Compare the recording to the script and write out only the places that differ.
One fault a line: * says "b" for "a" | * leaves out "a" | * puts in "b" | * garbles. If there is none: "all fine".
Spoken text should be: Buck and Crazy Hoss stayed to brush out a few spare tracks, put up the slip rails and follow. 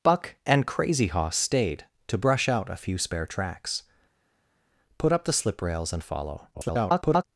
* garbles